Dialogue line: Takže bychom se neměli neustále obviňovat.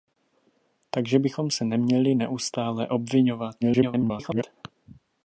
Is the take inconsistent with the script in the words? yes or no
yes